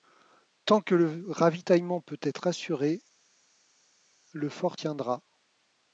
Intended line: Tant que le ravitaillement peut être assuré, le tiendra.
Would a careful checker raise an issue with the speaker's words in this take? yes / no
yes